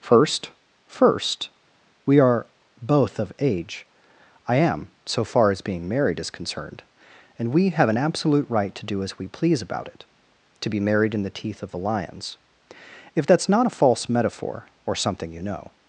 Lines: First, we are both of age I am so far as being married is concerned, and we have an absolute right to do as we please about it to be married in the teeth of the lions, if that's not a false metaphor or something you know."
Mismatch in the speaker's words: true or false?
true